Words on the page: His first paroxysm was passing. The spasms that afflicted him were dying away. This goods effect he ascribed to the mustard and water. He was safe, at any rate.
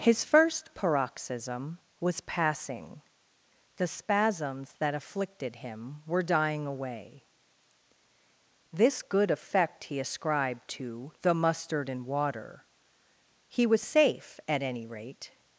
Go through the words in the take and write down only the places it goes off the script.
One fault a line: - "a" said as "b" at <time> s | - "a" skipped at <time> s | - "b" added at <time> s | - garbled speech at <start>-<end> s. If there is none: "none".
- "goods" said as "good" at 9.0 s